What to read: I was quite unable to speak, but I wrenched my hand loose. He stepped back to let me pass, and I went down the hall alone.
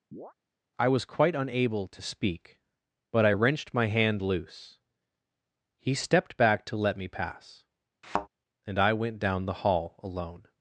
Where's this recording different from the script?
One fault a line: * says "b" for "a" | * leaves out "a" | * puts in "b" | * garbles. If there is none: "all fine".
all fine